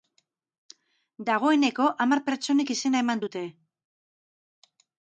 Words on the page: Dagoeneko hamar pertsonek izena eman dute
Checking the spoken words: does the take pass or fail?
pass